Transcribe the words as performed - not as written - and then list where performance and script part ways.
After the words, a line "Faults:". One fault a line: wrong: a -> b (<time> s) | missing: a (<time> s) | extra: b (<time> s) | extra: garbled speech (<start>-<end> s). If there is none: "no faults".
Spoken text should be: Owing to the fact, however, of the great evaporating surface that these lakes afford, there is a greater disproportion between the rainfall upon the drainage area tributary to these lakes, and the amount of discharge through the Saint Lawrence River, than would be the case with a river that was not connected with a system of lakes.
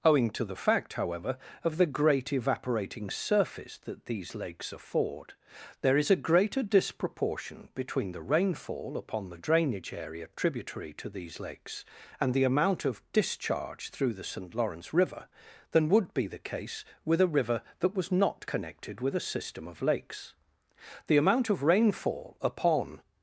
Owing to the fact, however, of the great evaporating surface that these lakes afford, there is a greater disproportion between the rainfall upon the drainage area tributary to these lakes, and the amount of discharge through the Saint Lawrence River, than would be the case with a river that was not connected with a system of lakes. The amount of rainfall upon
Faults:
extra: The amount of rainfall upon (21.1 s)